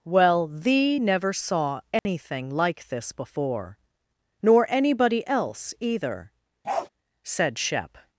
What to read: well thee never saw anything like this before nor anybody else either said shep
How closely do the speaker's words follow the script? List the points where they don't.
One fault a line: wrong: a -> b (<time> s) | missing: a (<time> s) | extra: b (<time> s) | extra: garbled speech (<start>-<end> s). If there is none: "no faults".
no faults